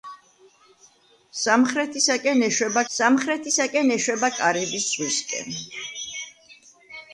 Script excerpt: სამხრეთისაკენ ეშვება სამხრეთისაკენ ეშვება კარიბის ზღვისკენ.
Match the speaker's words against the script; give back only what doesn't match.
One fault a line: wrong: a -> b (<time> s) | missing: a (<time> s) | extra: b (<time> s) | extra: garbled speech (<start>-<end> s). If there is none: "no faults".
no faults